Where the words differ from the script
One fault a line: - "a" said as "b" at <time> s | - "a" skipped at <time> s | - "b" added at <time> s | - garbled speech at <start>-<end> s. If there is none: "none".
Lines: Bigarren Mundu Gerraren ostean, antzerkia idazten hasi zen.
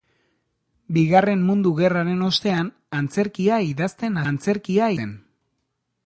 - "hasi" said as "antzerkia" at 4.3 s